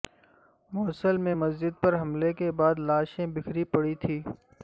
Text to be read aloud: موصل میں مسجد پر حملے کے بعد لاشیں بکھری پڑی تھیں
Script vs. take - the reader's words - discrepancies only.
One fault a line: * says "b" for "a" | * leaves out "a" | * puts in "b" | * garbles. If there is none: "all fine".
all fine